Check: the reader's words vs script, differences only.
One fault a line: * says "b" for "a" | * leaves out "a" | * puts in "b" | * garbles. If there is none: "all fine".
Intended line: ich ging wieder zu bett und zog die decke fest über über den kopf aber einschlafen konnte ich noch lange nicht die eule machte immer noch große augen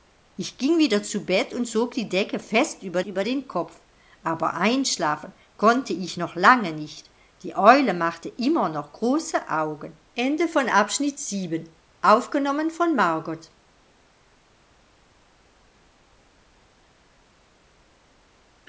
all fine